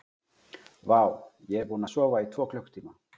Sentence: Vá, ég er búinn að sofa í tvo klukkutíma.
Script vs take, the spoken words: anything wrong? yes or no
no